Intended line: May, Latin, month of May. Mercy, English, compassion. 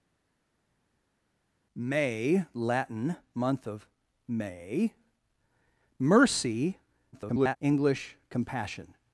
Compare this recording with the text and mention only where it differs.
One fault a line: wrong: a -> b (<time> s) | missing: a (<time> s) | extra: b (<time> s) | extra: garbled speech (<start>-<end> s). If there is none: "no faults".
extra: garbled speech (7.1-7.6 s)